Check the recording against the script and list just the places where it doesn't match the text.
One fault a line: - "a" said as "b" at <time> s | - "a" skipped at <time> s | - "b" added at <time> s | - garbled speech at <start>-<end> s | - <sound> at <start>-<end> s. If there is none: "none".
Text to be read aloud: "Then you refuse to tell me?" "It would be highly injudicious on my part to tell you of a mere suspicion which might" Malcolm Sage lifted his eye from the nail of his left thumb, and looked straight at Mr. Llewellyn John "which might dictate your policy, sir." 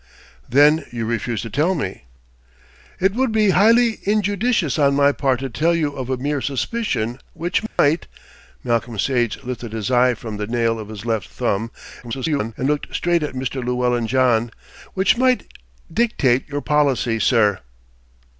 - dropout at 7.7-7.8 s
- garbled speech at 12.0-12.5 s